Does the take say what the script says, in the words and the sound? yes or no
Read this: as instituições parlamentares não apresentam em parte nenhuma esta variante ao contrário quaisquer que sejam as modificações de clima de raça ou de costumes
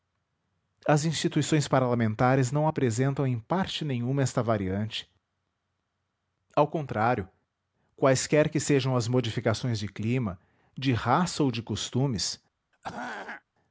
no